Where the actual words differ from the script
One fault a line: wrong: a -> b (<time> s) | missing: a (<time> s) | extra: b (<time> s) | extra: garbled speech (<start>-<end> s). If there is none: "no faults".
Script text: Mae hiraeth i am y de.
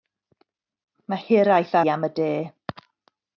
no faults